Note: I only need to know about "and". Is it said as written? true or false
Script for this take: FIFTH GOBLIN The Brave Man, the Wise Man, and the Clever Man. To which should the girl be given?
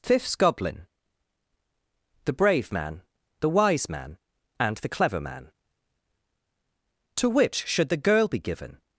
true